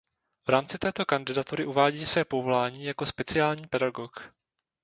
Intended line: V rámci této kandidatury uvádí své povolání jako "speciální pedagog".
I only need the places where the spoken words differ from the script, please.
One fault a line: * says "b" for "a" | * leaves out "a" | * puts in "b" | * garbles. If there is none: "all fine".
all fine